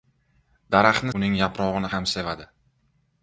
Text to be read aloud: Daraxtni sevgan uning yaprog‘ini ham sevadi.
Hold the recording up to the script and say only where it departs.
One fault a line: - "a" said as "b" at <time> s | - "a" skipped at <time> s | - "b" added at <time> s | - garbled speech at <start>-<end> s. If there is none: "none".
- "sevgan" skipped at 1.1 s